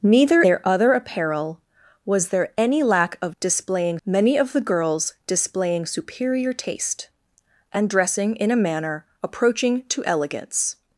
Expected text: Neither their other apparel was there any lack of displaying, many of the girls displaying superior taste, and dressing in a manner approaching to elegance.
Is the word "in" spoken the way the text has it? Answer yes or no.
yes